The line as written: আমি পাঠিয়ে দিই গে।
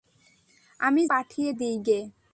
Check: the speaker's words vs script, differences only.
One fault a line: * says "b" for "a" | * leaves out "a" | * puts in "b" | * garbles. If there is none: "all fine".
all fine